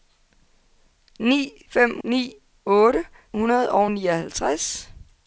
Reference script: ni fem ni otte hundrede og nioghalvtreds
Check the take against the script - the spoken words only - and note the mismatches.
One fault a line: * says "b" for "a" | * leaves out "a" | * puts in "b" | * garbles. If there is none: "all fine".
all fine